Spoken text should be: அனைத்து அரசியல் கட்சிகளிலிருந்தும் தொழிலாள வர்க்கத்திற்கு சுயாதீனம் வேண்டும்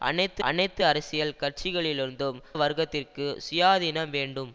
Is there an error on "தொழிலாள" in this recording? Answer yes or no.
yes